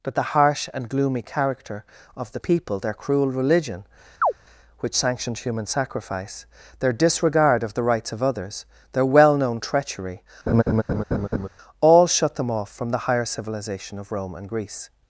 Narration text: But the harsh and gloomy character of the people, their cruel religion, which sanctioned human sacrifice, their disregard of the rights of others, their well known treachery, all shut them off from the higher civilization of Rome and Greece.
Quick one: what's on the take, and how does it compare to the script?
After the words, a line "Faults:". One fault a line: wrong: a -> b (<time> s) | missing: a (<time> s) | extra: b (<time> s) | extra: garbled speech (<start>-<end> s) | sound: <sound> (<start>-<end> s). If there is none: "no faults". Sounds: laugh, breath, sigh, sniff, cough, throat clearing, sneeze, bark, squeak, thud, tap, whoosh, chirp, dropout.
But the harsh and gloomy character of the people, their cruel religion, which sanctioned human sacrifice, their disregard of the rights of others, their well known treachery, all shut them off from the higher civilization of Rome and Greece.
Faults:
sound: chirp (4.2-4.3 s)
sound: laugh (10.5-11.5 s)